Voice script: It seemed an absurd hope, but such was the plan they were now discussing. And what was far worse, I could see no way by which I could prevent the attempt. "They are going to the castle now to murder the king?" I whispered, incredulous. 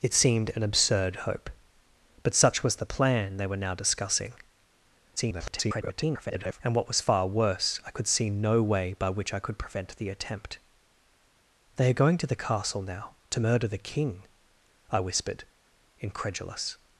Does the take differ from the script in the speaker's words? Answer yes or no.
yes